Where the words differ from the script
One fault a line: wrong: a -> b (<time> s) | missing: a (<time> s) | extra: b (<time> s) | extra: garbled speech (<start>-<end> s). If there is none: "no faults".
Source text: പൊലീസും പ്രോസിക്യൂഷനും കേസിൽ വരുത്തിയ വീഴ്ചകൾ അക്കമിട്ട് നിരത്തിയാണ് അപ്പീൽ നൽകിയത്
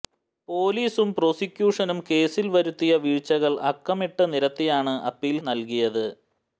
no faults